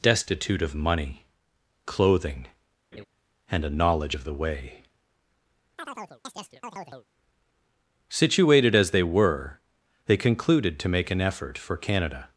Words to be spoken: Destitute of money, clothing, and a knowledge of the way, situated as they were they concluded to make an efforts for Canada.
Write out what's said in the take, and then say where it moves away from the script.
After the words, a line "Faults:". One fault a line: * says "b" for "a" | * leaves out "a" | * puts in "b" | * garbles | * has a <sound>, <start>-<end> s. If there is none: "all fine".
Destitute of money, clothing, and a knowledge of the way, situated as they were they concluded to make an effort for Canada.
Faults:
* has a laugh, 2.9-3.1 s
* has a chirp, 5.8-7.1 s
* says "effort" for "efforts"